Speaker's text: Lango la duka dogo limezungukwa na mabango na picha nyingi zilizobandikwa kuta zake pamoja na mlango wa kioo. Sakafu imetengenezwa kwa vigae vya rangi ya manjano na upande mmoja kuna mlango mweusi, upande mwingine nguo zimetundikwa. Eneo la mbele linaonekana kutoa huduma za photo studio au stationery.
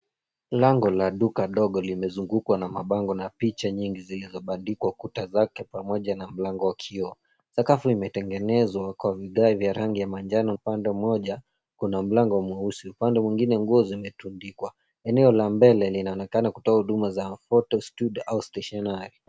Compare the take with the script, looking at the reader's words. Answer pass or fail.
fail